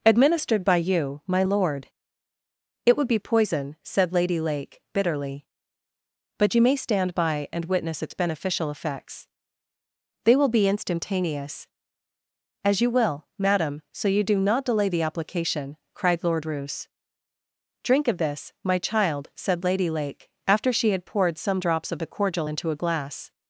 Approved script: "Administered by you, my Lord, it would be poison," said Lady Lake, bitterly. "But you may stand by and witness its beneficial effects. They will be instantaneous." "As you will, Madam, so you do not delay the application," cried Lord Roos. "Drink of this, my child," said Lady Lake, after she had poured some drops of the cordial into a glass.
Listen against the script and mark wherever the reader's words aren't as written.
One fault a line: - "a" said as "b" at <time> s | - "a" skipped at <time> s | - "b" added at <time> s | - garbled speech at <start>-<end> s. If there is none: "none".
none